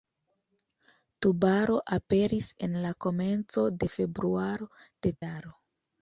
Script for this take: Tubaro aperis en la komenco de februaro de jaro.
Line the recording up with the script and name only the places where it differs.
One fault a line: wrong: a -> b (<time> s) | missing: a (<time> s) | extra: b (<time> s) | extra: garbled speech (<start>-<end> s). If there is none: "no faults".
no faults